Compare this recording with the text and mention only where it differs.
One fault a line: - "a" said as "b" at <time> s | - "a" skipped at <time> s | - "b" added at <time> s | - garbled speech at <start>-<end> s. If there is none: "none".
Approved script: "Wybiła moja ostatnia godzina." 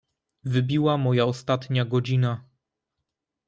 none